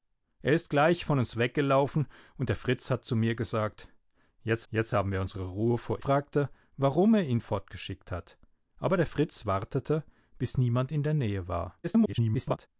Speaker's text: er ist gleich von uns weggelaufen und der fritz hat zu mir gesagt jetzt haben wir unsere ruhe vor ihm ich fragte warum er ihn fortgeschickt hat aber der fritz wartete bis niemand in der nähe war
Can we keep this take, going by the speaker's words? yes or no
no